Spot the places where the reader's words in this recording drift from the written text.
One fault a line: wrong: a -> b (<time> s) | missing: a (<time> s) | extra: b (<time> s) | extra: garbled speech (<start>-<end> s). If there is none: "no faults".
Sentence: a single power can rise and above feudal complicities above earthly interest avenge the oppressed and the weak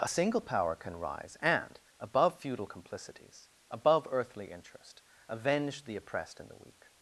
no faults